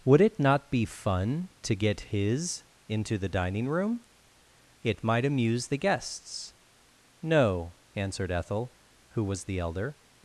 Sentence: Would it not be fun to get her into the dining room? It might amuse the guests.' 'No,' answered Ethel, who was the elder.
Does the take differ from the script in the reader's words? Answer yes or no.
yes